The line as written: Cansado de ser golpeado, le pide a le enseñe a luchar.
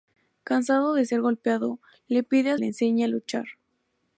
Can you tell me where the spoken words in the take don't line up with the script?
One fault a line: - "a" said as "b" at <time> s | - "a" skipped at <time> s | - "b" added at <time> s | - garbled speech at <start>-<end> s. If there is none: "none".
none